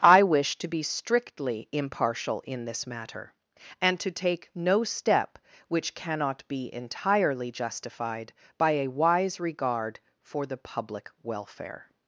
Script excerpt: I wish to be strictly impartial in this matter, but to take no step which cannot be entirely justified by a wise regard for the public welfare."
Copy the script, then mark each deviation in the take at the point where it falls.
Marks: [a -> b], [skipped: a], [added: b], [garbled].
I wish to be strictly impartial in this matter, [but -> and] to take no step which cannot be entirely justified by a wise regard for the public welfare."